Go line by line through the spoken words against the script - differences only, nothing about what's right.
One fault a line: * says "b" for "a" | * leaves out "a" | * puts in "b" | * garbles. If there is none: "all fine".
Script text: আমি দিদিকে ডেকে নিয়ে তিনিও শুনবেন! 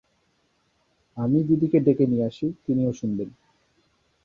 * puts in "আসি"